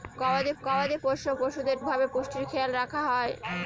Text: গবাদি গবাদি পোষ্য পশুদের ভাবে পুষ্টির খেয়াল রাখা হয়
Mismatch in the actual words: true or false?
false